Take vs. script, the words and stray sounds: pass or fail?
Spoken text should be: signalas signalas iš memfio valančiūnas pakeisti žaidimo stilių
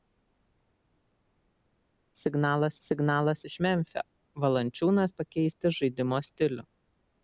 pass